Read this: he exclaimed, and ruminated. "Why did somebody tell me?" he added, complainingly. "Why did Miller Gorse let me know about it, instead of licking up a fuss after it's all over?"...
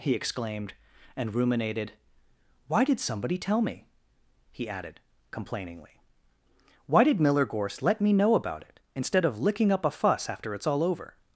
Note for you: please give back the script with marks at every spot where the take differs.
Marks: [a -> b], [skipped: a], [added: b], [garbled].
he exclaimed, and ruminated. "Why did somebody tell me?" he added, complainingly. "Why did Miller Gorse let me know about it, instead of licking up a fuss after it's all over?"...